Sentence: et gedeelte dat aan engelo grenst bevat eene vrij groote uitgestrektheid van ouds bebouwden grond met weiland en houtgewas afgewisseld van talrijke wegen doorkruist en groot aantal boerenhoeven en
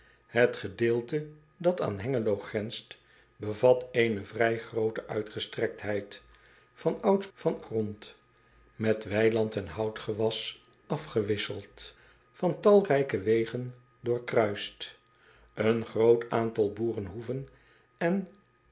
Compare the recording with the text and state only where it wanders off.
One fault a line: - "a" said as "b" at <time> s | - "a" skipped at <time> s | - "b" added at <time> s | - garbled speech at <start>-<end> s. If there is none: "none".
- "bebouwden" said as "van" at 7.3 s